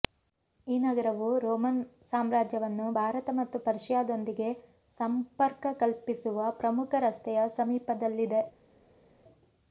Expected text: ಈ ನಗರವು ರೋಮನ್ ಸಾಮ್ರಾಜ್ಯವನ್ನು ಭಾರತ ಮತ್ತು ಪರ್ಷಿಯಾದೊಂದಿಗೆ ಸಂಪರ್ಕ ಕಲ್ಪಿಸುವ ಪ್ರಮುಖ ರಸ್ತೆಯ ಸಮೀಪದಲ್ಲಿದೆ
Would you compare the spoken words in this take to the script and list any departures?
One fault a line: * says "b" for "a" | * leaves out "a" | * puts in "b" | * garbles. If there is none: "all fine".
all fine